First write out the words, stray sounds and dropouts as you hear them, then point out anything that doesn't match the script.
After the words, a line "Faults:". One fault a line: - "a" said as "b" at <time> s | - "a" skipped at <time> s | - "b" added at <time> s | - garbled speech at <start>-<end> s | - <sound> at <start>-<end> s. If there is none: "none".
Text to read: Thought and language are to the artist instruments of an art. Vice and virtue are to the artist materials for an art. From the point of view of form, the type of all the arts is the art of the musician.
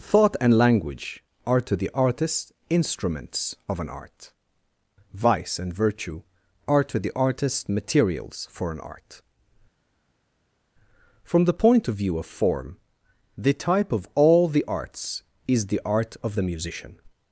Thought and language are to the artist instruments of an art. Vice and virtue are to the artist materials for an art. From the point of view of form, the type of all the arts is the art of the musician.
Faults:
none